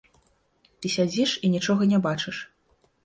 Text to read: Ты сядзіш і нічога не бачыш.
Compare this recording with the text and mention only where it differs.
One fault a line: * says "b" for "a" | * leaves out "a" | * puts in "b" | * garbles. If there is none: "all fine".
all fine